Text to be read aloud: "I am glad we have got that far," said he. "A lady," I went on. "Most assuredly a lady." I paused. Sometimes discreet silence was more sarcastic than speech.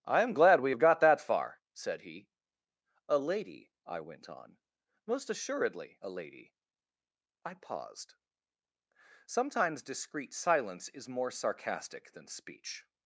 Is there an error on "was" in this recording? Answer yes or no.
yes